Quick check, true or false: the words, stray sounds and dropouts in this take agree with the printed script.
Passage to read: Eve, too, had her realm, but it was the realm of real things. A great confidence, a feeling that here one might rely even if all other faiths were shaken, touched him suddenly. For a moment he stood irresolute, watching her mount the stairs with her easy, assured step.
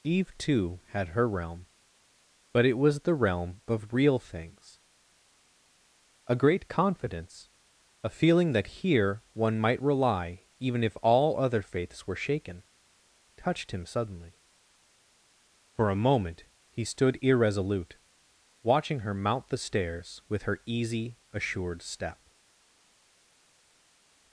true